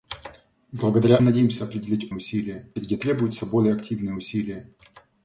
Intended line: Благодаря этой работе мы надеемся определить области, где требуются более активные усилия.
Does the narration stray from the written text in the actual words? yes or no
yes